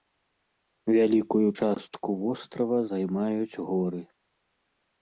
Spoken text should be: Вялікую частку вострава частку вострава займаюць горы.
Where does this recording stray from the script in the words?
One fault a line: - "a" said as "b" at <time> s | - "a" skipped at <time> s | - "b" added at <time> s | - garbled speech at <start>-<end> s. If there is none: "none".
- "частку вострава" skipped at 2.8 s